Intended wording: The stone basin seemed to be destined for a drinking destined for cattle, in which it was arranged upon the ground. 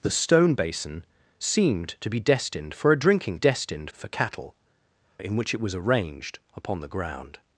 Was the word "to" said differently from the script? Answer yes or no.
no